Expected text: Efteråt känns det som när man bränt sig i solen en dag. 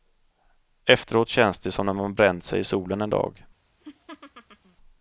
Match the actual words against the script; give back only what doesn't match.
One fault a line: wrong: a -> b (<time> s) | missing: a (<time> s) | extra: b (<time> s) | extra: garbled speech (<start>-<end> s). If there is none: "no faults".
no faults